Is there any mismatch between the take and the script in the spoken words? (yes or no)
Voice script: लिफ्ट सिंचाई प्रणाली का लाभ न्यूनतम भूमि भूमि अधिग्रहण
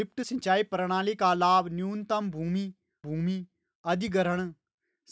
no